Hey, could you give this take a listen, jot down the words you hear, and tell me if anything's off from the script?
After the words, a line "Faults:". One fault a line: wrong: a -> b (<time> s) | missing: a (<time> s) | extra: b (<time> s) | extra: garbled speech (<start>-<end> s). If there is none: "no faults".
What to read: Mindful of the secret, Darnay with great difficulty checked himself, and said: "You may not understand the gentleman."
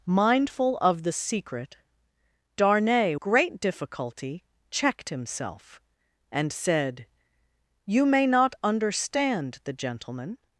Mindful of the secret, Darnay great difficulty checked himself, and said: "You may not understand the gentleman."
Faults:
missing: with (3.1 s)